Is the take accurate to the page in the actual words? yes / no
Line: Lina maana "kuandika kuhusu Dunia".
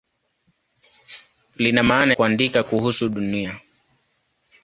yes